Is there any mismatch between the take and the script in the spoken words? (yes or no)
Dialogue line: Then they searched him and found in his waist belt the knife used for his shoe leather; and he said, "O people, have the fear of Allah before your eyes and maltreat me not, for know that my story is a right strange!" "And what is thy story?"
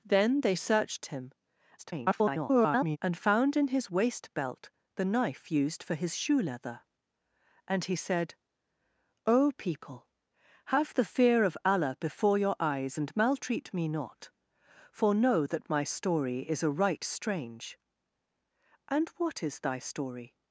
yes